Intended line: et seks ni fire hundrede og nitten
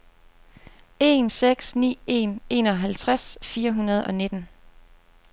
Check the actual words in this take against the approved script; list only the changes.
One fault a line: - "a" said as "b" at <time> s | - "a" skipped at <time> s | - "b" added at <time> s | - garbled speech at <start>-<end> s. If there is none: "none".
- "et" said as "en" at 1.0 s
- "en enoghalvtreds" added at 2.1 s